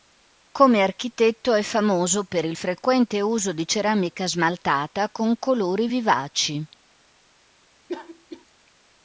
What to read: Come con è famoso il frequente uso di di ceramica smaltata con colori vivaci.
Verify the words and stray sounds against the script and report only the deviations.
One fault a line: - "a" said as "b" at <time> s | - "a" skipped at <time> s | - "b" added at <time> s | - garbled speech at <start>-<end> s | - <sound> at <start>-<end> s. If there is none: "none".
- "con" said as "architetto" at 0.8 s
- "per" added at 2.2 s
- "di" skipped at 3.7 s
- cough at 7.9-8.5 s